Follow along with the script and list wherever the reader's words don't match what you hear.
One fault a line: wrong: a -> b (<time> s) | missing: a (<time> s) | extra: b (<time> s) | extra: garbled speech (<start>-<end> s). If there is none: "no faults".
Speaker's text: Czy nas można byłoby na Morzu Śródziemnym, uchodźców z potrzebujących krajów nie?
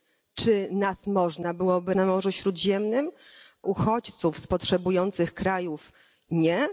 no faults